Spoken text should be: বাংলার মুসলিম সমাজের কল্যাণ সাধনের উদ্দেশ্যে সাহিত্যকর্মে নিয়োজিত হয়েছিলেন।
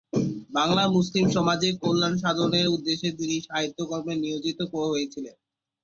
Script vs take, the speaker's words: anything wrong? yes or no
yes